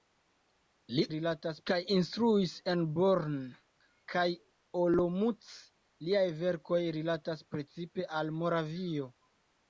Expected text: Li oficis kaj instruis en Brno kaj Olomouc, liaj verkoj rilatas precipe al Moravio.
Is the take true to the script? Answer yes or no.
no